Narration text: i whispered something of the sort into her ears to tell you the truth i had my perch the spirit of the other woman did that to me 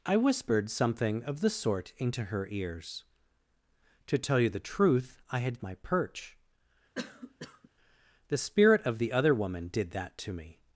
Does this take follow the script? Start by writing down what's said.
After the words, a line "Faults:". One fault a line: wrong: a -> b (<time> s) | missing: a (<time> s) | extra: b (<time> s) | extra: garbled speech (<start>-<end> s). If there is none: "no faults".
i whispered something of the sort into her ears to tell you the truth i had my perch the spirit of the other woman did that to me
Faults:
no faults